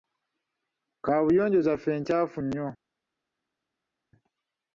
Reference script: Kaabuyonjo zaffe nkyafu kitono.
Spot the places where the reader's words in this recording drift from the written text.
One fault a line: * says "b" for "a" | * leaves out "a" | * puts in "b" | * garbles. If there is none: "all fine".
* says "nnyo" for "kitono"